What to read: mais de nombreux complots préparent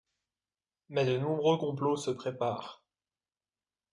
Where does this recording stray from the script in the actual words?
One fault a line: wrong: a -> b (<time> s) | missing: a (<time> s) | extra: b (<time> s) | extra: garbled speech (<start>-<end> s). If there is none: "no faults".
extra: se (2.0 s)